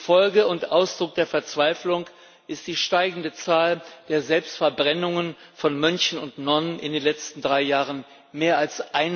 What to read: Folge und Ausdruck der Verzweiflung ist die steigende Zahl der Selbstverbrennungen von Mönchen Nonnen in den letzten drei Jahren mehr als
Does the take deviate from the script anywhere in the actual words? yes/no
yes